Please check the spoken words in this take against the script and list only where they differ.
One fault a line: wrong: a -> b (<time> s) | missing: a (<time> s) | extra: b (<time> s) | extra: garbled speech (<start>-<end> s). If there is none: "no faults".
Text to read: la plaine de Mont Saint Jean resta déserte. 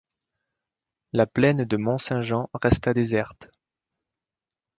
no faults